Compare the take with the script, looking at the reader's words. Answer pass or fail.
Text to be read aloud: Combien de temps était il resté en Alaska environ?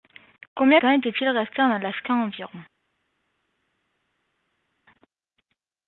fail